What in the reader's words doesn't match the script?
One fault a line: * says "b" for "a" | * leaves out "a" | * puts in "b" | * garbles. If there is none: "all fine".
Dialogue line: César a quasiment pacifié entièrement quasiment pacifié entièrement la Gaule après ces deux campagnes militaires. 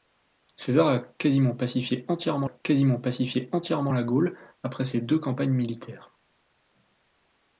all fine